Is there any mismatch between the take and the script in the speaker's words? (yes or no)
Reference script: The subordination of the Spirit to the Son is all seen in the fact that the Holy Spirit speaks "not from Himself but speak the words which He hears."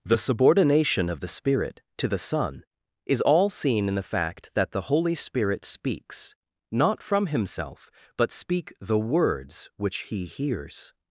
no